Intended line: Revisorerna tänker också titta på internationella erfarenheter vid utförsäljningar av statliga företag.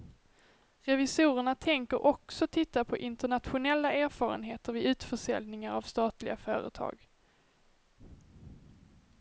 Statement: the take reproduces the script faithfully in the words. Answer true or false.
true